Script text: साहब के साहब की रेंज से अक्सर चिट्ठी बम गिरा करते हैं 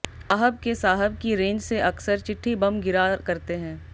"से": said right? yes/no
yes